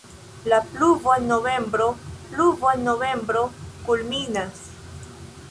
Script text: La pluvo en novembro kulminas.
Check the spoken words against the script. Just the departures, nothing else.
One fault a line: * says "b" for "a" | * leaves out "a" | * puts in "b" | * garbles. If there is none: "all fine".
* puts in "pluvo en novembro"